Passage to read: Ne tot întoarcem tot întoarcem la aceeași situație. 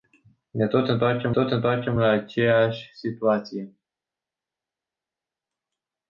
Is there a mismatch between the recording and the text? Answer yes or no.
no